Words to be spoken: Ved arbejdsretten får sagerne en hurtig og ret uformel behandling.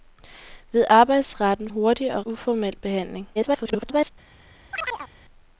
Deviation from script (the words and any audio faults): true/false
true